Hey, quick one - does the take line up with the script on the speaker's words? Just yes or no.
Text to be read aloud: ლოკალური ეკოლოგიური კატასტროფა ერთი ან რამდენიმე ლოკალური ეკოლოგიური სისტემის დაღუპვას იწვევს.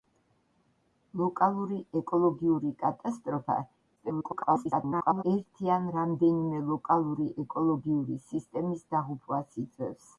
no